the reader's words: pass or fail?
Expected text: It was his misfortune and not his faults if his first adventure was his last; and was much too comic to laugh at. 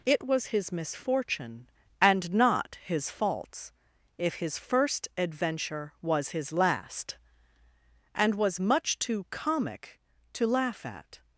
pass